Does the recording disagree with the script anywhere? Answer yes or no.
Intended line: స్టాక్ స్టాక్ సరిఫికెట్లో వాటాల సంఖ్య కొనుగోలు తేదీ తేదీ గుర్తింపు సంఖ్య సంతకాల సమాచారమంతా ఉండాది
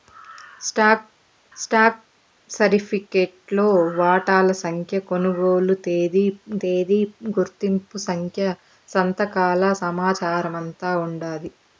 no